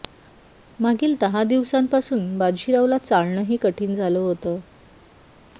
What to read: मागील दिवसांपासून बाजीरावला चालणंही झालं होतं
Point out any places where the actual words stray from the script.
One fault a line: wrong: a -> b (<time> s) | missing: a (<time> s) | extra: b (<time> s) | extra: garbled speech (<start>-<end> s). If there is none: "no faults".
extra: दहा (1.2 s)
extra: कठीण (3.6 s)